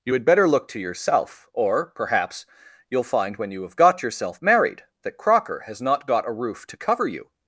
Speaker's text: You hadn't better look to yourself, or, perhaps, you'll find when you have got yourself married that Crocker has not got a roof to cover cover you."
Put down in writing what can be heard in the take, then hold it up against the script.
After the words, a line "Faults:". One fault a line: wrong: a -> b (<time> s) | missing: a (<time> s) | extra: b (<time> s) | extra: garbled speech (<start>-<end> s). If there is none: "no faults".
You had better look to yourself, or, perhaps, you'll find when you have got yourself married that Crocker has not got a roof to cover you."
Faults:
wrong: hadn't -> had (0.1 s)
missing: cover (7.1 s)